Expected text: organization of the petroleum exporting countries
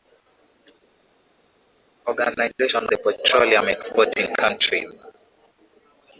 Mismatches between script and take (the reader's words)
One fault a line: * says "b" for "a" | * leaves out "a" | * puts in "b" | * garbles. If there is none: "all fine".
* leaves out "of"